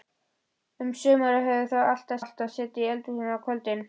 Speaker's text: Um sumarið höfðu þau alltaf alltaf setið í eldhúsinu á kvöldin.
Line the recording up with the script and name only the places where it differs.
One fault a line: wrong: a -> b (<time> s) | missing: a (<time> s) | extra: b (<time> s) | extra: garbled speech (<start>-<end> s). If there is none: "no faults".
no faults